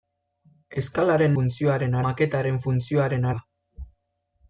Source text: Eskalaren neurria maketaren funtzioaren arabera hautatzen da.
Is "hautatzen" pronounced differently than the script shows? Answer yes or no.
yes